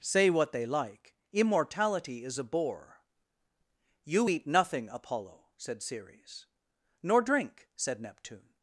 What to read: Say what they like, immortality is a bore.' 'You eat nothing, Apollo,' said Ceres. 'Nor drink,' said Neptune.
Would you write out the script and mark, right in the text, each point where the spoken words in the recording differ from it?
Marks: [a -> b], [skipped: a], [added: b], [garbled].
Say what they like, immortality is a bore.' 'You eat nothing, Apollo,' said Ceres. 'Nor drink,' said Neptune.